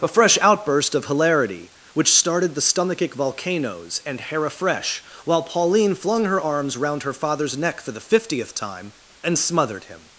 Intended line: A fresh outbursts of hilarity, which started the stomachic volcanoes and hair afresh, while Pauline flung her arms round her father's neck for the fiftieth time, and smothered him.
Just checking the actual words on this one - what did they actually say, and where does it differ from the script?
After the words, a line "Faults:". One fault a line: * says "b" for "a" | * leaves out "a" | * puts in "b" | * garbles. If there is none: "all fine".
A fresh outburst of hilarity, which started the stomachic volcanoes and hair afresh, while Pauline flung her arms round her father's neck for the fiftieth time, and smothered him.
Faults:
* says "outburst" for "outbursts"